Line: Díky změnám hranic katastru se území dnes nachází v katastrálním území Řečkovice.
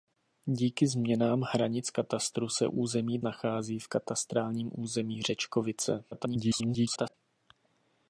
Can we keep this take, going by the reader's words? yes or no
no